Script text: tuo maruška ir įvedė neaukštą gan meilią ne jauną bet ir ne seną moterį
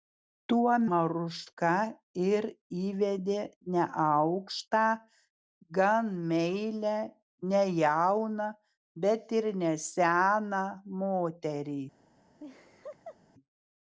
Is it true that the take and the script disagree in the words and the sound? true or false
true